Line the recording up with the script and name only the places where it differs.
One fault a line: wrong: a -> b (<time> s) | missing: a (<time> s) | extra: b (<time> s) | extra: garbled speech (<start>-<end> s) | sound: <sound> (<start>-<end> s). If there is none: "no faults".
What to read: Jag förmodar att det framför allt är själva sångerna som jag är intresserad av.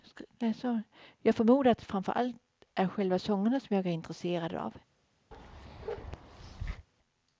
sound: bark (5.3-6.9 s)